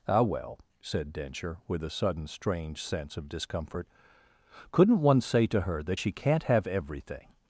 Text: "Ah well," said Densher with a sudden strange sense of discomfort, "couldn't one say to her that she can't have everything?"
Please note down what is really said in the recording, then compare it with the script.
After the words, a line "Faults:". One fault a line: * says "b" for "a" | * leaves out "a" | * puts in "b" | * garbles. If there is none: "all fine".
"Ah well," said Densher with a sudden strange sense of discomfort, "couldn't one say to her that she can't have everything?"
Faults:
all fine